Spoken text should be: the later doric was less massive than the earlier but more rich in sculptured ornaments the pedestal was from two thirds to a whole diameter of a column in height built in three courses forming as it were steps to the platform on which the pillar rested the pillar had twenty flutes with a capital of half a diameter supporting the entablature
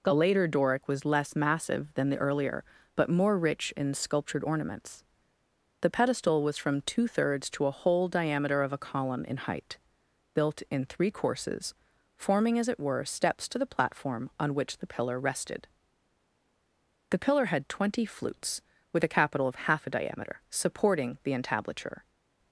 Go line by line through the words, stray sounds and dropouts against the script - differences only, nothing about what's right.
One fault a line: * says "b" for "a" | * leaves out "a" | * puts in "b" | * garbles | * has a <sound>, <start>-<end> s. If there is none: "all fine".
all fine